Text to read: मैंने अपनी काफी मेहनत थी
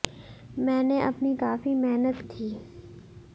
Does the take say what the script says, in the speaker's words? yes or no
yes